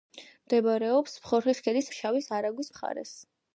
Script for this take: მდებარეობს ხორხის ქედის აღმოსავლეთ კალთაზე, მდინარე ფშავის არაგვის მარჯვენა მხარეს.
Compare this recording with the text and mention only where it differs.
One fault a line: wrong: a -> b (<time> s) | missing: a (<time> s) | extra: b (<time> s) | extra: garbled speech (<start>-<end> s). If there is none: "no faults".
missing: აღმოსავლეთ კალთაზე მდინარე (1.9 s)
missing: მარჯვენა (2.7 s)